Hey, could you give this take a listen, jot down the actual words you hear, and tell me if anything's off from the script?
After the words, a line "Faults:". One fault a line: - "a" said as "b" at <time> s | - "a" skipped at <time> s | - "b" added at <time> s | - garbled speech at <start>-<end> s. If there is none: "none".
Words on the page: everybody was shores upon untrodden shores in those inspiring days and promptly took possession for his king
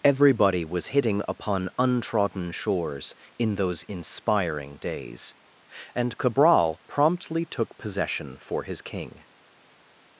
everybody was hitting upon untrodden shores in those inspiring days and cabral promptly took possession for his king
Faults:
- "shores" said as "hitting" at 1.0 s
- "cabral" added at 6.2 s